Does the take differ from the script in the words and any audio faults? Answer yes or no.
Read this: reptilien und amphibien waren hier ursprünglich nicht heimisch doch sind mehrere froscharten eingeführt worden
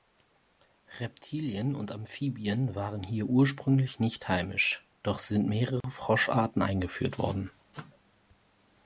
yes